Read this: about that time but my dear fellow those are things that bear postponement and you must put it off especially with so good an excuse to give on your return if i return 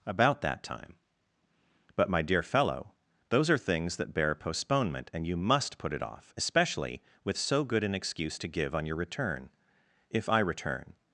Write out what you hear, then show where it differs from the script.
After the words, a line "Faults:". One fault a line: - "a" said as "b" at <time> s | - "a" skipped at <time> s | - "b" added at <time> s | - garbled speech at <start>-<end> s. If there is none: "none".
about that time but my dear fellow those are things that bear postponement and you must put it off especially with so good an excuse to give on your return if i return
Faults:
none